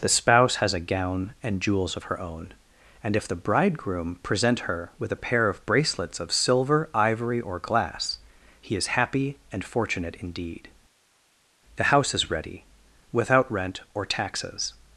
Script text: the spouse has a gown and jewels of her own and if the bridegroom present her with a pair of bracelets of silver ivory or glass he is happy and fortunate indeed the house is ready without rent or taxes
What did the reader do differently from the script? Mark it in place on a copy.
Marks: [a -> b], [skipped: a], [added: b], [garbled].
the spouse has a gown and jewels of her own and if the bridegroom present her with a pair of bracelets of silver ivory or glass he is happy and fortunate indeed the house is ready without rent or taxes